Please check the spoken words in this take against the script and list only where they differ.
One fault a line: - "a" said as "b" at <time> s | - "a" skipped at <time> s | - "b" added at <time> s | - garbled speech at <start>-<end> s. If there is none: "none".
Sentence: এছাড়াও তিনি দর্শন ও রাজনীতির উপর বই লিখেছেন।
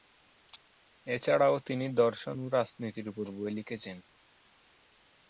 none